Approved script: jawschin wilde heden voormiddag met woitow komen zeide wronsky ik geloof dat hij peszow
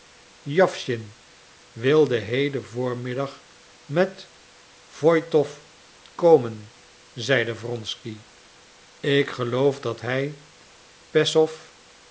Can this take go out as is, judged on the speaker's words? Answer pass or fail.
pass